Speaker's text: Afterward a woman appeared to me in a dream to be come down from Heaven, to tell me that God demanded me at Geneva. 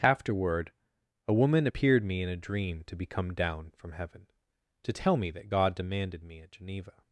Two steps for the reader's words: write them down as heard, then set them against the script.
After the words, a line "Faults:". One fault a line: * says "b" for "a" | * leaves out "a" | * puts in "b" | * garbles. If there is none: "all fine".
Afterward a woman appeared me in a dream to be come down from Heaven, to tell me that God demanded me at Geneva.
Faults:
* leaves out "to"